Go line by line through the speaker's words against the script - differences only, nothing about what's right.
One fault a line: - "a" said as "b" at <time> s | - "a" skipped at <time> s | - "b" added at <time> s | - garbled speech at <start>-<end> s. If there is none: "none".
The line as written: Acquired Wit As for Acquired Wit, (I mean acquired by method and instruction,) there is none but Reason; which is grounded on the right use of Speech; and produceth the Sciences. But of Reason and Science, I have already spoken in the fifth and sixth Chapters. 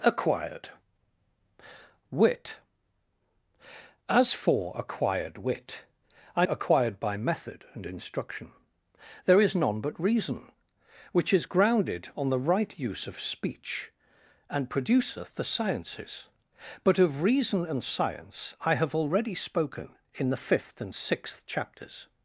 - "mean" skipped at 6.5 s